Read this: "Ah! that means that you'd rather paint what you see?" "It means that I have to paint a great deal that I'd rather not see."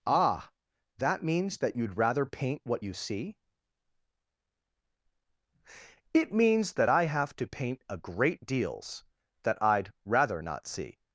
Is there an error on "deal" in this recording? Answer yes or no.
yes